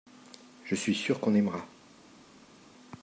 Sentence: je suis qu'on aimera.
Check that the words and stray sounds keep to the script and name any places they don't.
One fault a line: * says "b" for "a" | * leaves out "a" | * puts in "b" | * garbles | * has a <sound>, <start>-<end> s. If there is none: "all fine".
* puts in "sûr"